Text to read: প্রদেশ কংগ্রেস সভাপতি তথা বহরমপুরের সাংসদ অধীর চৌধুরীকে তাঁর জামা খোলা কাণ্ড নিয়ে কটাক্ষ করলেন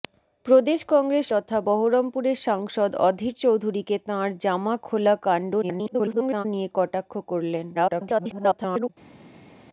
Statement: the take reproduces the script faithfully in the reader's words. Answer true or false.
false